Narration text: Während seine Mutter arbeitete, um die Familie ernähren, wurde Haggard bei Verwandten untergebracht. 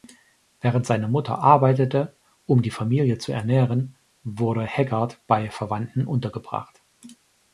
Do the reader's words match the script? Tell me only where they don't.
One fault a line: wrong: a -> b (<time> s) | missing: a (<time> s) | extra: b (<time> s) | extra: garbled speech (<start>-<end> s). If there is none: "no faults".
extra: zu (3.2 s)